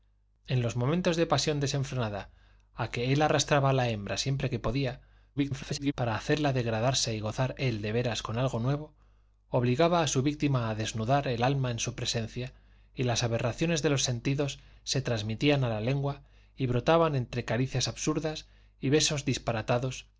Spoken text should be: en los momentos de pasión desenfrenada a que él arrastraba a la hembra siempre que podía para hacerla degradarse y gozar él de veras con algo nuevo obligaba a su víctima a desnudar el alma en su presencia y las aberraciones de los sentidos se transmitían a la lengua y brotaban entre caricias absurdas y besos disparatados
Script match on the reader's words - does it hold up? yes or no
no